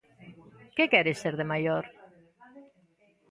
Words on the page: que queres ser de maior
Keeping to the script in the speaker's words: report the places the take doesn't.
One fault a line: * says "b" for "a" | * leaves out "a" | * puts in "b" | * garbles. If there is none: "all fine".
all fine